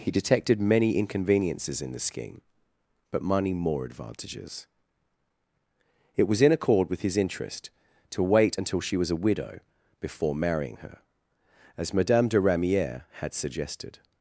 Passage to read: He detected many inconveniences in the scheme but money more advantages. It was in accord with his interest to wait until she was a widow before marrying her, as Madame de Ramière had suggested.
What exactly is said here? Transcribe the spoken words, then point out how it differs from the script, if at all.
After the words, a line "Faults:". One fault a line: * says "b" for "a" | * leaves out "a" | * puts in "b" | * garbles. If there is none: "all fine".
He detected many inconveniences in the scheme but money more advantages. It was in accord with his interest to wait until she was a widow before marrying her, as Madame de Ramière had suggested.
Faults:
all fine